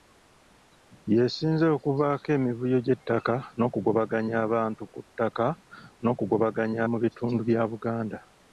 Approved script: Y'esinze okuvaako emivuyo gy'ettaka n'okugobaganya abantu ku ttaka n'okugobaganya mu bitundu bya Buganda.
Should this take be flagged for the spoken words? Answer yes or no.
no